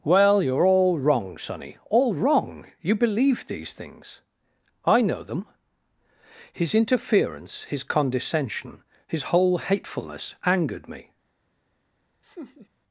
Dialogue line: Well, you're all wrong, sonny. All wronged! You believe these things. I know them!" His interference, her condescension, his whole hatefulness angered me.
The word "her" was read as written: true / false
false